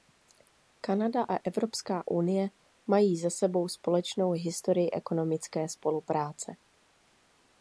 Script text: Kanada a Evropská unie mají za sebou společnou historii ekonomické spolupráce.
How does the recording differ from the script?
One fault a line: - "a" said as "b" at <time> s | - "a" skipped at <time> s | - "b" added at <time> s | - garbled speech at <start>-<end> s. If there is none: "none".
none